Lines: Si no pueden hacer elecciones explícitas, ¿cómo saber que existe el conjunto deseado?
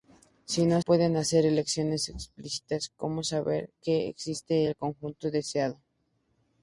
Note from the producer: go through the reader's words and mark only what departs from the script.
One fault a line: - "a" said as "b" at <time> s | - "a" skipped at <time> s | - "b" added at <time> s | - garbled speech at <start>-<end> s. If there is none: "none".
none